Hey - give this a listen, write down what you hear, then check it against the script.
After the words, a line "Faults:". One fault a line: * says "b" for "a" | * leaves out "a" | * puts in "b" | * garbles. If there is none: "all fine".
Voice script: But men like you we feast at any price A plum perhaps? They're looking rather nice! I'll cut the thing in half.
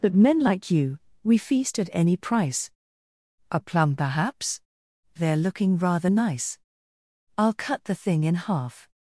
But men like you we feast at any price A plum perhaps? They're looking rather nice! I'll cut the thing in half.
Faults:
all fine